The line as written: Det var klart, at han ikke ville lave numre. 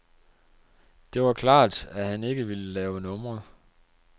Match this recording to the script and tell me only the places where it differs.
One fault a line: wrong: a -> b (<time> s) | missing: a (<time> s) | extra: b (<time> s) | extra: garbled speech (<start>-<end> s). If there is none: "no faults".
no faults